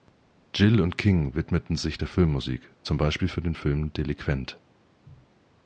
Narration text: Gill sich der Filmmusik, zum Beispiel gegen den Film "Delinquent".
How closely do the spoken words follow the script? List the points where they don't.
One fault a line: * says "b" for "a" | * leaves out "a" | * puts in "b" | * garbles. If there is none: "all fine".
* puts in "und King widmeten"
* says "für" for "gegen"